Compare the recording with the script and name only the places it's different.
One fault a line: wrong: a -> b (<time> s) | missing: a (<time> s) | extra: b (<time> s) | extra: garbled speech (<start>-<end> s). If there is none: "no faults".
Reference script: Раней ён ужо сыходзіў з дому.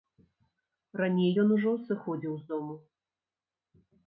no faults